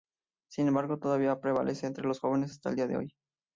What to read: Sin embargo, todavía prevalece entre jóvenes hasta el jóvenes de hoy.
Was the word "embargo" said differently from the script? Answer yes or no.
no